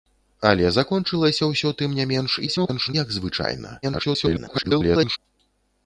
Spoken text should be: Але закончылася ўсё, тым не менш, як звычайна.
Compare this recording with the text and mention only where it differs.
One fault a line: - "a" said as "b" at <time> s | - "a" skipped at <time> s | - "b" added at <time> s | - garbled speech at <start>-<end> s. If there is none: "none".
- garbled speech at 2.5-2.9 s
- garbled speech at 3.8-5.2 s